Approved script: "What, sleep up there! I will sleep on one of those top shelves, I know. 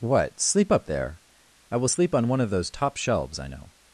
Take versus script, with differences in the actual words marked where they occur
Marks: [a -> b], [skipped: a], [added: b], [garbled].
"What, sleep up there! I will sleep on one of those top shelves, I know.